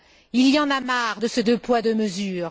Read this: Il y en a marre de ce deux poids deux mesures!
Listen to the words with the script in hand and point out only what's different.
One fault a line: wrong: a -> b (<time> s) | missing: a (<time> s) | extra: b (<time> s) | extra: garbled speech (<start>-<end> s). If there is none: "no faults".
no faults